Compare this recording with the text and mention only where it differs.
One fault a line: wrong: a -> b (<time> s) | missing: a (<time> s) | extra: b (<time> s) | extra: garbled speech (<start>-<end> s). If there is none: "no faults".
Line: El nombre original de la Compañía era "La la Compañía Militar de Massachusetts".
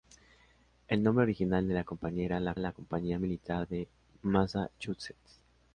no faults